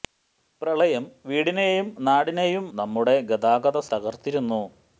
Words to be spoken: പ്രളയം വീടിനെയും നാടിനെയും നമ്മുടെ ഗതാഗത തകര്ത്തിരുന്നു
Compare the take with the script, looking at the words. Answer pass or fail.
pass